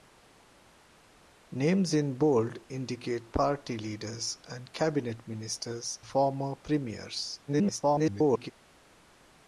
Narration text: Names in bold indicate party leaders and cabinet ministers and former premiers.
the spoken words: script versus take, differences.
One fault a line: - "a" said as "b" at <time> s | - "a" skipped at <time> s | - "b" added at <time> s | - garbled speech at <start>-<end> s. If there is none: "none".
- "and" skipped at 6.0 s
- garbled speech at 7.5-8.5 s